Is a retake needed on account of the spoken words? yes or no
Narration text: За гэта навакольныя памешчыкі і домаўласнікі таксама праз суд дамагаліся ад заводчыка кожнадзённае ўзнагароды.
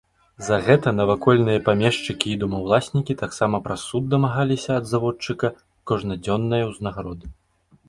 no